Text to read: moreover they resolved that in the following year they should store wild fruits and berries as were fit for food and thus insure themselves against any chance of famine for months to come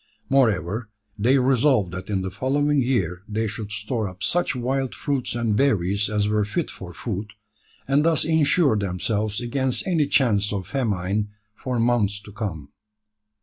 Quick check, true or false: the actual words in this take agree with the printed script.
false